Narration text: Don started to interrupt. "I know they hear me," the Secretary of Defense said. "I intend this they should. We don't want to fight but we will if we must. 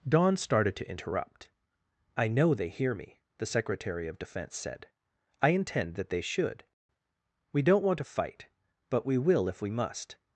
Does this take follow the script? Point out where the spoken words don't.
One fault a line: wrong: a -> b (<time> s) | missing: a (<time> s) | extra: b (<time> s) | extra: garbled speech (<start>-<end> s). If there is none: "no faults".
wrong: this -> that (5.9 s)